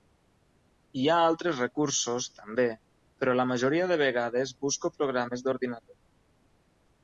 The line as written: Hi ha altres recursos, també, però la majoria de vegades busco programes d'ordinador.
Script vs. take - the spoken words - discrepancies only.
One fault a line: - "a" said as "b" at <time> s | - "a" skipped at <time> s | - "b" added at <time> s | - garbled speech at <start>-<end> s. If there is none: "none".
none